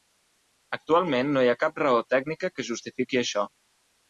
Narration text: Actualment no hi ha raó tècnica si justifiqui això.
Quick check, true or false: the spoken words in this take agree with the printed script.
false